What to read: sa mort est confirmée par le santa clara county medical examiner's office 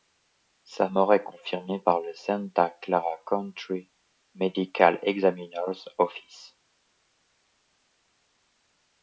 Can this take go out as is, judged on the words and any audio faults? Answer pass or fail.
pass